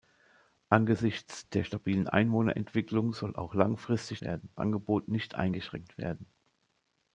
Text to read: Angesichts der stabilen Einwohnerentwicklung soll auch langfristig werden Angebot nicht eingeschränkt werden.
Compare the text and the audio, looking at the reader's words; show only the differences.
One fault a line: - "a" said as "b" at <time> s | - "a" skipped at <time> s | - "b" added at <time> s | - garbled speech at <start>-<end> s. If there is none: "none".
none